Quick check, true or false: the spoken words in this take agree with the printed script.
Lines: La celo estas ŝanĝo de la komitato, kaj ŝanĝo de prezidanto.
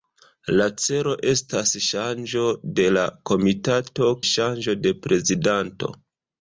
false